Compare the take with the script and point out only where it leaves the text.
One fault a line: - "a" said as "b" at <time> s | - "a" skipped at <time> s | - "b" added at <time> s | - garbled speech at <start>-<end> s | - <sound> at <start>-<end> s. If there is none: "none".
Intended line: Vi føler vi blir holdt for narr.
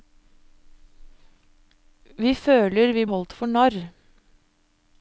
- "blir" skipped at 3.1 s